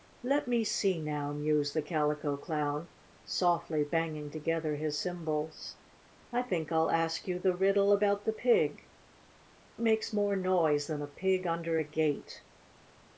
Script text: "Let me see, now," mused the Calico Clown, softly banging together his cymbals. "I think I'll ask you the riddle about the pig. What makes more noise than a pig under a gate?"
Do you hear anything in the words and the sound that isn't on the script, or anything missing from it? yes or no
yes